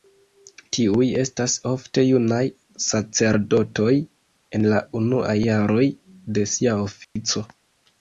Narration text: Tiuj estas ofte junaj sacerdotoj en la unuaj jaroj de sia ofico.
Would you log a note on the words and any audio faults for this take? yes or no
yes